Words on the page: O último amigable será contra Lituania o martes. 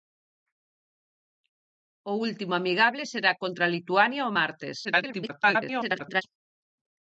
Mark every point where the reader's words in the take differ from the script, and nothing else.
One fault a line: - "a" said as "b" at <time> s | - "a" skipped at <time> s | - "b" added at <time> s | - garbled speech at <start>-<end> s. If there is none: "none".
- garbled speech at 4.8-6.2 s